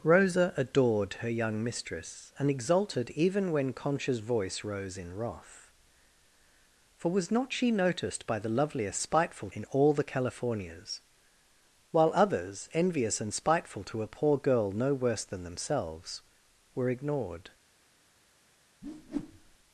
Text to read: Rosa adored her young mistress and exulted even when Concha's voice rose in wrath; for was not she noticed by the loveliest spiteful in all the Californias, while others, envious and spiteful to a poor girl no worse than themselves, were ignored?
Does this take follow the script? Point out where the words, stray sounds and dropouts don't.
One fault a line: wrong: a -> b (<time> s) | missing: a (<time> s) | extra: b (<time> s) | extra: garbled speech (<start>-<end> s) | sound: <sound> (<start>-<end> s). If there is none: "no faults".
sound: whoosh (18.8-19.6 s)